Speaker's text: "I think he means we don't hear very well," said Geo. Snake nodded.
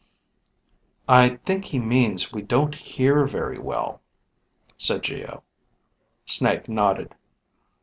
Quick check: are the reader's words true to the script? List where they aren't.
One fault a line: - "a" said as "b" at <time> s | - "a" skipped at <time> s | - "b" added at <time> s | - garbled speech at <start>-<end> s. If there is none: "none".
none